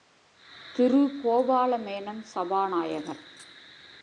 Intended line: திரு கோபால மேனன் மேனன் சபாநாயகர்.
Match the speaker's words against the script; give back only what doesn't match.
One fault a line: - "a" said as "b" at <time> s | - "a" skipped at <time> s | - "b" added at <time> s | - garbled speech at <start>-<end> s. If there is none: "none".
- "மேனன்" skipped at 2.2 s